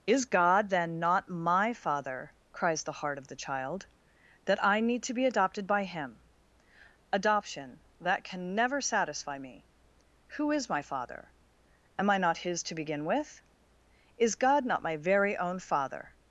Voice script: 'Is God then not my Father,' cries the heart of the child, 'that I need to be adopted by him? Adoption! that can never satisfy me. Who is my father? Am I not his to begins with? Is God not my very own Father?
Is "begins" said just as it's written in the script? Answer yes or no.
no